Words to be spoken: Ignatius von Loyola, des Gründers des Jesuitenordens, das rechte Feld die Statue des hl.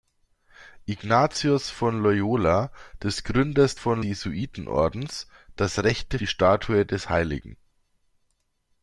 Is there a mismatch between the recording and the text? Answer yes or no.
yes